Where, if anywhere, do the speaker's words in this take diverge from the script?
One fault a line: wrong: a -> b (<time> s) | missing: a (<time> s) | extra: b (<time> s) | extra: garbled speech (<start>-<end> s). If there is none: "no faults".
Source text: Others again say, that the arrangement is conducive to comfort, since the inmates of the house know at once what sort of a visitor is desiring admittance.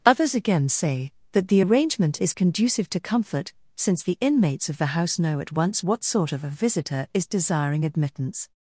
no faults